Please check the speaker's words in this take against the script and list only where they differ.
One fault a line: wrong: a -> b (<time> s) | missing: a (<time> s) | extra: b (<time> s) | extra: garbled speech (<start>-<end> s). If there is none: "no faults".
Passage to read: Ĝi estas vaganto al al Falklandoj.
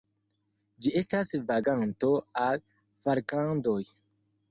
missing: al (2.6 s)